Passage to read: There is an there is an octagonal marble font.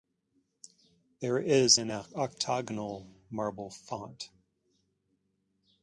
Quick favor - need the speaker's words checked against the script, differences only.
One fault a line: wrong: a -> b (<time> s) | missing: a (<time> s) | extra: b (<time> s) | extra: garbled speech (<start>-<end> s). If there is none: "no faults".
missing: there is an (1.9 s)